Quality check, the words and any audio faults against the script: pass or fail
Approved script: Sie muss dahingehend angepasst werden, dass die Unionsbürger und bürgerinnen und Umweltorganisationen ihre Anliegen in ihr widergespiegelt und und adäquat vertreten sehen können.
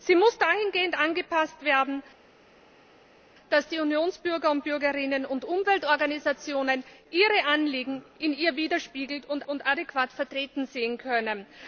pass